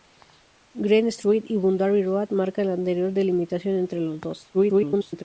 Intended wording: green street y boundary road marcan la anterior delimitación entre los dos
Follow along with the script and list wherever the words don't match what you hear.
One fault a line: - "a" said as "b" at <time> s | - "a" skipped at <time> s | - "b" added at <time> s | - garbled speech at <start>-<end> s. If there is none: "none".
- garbled speech at 4.5-5.2 s